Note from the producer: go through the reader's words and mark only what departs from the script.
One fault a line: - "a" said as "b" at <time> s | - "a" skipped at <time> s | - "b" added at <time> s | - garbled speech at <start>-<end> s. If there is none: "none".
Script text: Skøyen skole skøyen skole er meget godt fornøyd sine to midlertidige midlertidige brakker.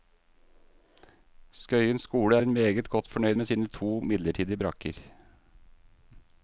- "skøyen skole" skipped at 2.4 s
- "med" added at 3.3 s
- "midlertidige" skipped at 4.6 s